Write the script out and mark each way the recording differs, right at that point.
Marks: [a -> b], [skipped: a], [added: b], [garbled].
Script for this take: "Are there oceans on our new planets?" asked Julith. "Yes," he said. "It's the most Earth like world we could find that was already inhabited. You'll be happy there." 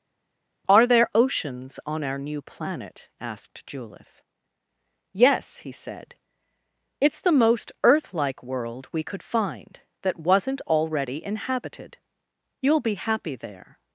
"Are there oceans on our new [planets?" -> planet] asked Julith. "Yes," he said. "It's the most Earth like world we could find that [was -> wasn't] already inhabited. You'll be happy there."